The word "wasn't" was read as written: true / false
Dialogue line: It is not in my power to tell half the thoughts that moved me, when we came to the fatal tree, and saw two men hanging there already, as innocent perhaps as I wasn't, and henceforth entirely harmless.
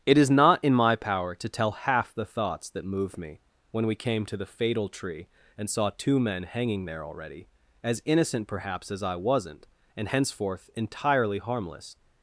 true